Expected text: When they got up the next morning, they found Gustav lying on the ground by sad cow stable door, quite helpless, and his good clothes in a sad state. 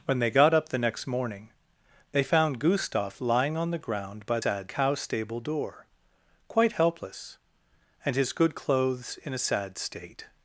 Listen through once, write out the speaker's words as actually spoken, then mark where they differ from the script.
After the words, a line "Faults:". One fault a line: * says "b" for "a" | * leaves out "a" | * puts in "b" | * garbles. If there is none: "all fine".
When they got up the next morning, they found Gustav lying on the ground by sad cow stable door, quite helpless, and his good clothes in a sad state.
Faults:
all fine